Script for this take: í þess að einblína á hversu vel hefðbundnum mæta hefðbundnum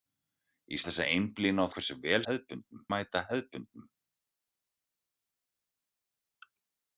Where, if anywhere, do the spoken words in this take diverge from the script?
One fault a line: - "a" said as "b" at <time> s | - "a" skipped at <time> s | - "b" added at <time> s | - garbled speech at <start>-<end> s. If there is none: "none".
none